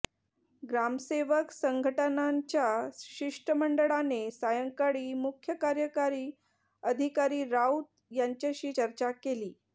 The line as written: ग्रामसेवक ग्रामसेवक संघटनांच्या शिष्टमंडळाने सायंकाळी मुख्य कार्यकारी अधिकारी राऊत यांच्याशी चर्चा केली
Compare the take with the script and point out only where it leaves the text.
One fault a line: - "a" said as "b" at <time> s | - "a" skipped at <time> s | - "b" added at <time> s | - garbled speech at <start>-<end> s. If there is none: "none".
- "ग्रामसेवक" skipped at 1.5 s